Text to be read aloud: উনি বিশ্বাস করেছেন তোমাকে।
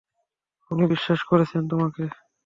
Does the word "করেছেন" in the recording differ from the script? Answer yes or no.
no